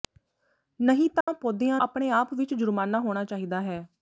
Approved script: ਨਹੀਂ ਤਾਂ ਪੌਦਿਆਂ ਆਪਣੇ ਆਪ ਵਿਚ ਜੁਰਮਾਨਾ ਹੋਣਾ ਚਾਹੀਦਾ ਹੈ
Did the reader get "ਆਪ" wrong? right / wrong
right